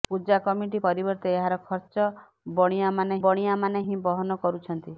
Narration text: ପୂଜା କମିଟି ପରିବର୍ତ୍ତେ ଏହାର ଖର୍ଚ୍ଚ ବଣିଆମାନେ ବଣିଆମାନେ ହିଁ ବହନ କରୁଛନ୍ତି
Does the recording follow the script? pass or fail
pass